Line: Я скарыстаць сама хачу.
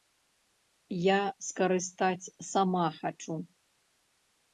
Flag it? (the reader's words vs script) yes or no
no